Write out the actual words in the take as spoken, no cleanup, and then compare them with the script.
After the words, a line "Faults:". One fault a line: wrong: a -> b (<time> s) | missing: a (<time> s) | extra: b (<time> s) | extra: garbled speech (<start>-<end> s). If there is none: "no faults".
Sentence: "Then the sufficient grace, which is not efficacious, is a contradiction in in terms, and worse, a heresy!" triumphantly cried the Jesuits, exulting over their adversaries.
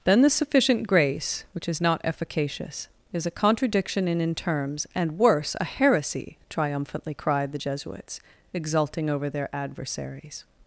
"Then the sufficient grace, which is not efficacious, is a contradiction in in terms, and worse, a heresy!" triumphantly cried the Jesuits, exulting over their adversaries.
Faults:
no faults